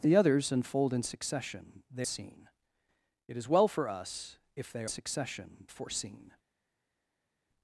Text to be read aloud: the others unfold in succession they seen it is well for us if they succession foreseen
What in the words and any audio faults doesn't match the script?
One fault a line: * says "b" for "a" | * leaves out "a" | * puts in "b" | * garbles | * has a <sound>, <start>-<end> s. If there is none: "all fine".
all fine